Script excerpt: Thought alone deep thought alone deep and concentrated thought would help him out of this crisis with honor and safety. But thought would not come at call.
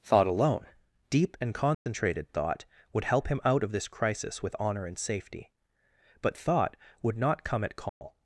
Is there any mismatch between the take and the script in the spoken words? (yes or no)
yes